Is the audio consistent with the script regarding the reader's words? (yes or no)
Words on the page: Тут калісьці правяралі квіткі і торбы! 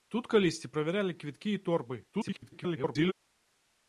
no